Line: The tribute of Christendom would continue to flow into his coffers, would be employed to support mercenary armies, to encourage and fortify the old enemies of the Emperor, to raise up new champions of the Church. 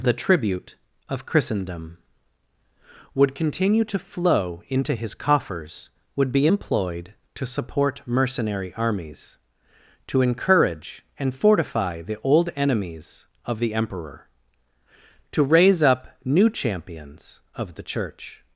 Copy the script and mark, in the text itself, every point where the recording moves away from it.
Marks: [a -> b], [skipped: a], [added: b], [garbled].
The tribute of Christendom would continue to flow into his coffers, would be employed to support mercenary armies, to encourage and fortify the old enemies of the Emperor, to raise up new champions of the Church.